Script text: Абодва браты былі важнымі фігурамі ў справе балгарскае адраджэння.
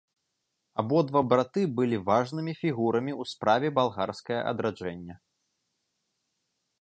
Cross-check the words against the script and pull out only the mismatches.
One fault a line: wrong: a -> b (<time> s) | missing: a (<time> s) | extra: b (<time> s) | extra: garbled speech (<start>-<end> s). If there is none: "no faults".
no faults